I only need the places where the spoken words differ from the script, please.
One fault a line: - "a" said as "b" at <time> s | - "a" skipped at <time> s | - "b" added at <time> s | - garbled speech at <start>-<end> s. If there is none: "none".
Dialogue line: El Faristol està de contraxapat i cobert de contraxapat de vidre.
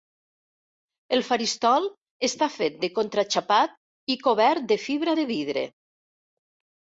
- "fet" added at 2.5 s
- "contraxapat" said as "fibra" at 4.9 s